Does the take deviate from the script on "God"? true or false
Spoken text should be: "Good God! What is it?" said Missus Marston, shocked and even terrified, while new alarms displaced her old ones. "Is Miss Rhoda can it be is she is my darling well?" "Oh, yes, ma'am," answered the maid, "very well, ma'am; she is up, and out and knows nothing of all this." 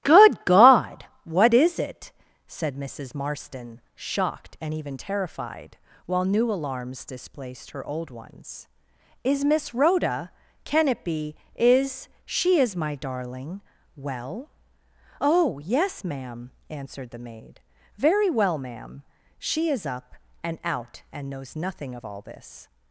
false